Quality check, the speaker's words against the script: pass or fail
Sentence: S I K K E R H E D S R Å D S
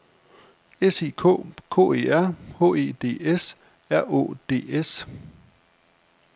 pass